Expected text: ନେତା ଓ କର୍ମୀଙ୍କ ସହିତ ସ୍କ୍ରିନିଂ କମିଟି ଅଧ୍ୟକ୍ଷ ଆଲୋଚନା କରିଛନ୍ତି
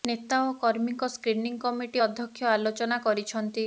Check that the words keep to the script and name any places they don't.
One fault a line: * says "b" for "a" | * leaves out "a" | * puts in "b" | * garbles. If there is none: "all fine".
* leaves out "ସହିତ"